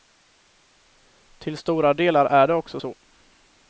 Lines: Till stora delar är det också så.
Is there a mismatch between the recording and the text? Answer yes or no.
no